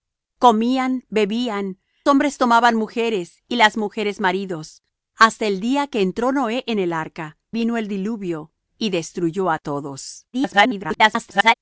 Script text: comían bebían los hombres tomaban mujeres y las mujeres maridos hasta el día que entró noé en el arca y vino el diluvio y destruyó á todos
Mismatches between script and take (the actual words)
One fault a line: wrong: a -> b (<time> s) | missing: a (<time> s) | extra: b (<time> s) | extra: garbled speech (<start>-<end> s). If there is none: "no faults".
missing: los (1.8 s)
missing: y (7.4 s)
extra: garbled speech (10.3-11.5 s)